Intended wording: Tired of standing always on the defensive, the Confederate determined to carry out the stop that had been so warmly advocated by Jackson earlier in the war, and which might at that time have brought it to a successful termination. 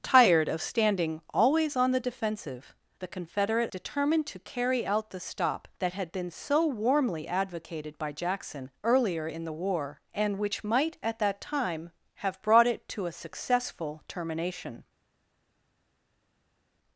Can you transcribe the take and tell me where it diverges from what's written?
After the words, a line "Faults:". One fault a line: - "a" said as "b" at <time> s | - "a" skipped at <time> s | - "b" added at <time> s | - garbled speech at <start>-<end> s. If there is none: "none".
Tired of standing always on the defensive, the Confederate determined to carry out the stop that had been so warmly advocated by Jackson earlier in the war, and which might at that time have brought it to a successful termination.
Faults:
none